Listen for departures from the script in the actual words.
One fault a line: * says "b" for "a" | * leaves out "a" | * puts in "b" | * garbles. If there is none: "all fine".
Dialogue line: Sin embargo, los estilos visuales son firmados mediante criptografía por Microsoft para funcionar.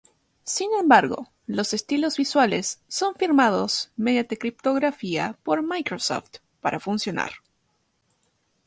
all fine